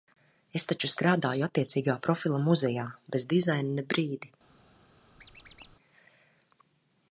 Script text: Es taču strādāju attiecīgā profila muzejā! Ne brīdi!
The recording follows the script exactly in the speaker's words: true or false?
false